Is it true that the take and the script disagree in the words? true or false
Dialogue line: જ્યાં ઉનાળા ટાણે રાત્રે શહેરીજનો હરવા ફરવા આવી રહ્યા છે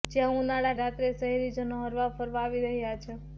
true